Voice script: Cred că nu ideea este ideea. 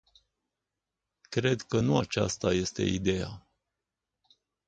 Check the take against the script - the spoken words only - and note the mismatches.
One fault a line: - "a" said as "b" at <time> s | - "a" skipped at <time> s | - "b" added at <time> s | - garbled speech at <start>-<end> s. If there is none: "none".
- "ideea" said as "aceasta" at 2.0 s